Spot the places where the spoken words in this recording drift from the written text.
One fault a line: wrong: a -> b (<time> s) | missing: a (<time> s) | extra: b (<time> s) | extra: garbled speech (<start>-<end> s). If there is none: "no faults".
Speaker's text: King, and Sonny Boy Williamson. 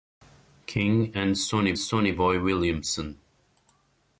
extra: Sonny (1.8 s)